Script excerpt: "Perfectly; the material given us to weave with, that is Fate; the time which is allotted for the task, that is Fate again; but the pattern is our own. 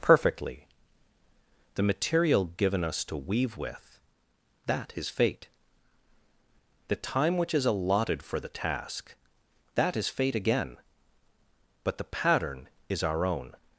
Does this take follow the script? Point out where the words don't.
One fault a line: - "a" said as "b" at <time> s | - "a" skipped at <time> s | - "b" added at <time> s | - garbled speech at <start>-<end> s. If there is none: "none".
none